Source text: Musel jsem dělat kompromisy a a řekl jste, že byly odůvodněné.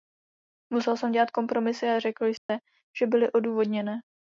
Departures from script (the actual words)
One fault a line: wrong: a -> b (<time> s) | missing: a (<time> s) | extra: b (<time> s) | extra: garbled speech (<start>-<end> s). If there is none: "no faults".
missing: a (2.0 s)